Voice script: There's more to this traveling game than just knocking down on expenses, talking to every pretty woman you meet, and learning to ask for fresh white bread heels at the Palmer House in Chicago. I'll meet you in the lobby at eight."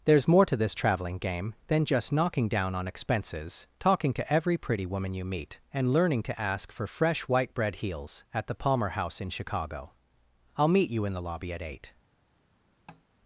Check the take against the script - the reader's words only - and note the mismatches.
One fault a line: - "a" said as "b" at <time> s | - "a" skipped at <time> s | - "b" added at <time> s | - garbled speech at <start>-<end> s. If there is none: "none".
none